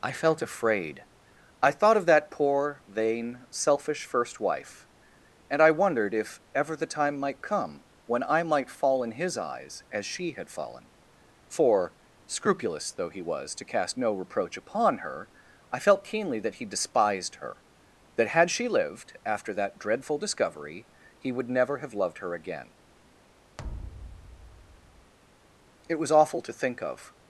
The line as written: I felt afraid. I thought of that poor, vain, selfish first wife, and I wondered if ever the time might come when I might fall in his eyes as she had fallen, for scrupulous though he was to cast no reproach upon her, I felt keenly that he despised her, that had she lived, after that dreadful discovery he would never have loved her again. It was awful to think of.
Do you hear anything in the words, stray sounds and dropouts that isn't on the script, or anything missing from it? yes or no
yes